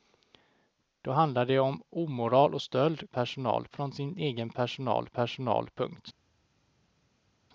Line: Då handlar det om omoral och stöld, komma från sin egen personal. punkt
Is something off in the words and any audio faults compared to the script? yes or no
yes